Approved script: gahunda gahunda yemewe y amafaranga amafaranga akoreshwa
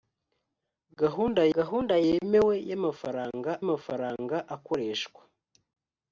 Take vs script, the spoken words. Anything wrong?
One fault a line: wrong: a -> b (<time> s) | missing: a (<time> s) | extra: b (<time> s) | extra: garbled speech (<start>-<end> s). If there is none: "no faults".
no faults